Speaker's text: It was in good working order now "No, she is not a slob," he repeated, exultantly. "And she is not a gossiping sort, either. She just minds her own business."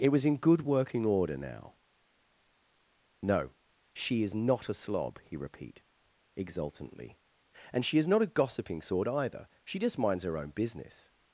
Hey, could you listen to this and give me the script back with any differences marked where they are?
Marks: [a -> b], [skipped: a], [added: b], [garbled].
It was in good working order now "No, she is not a slob," he [repeated, -> repeat] exultantly. "And she is not a gossiping sort, either. She just minds her own business."